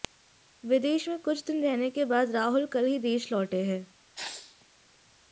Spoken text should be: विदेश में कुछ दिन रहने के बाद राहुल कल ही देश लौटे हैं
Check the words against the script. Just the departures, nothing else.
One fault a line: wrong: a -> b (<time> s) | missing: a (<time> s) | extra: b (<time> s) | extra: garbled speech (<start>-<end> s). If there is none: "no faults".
no faults